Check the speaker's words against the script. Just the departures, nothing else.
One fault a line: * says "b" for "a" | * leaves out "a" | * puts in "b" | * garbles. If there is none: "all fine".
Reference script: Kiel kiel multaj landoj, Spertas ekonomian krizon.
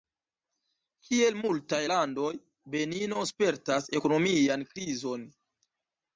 * leaves out "kiel"
* puts in "Benino"